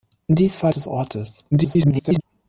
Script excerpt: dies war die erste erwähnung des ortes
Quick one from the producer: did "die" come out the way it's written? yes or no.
no